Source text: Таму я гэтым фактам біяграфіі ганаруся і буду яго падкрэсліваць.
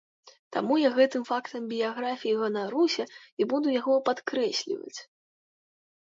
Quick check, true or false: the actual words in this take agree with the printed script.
true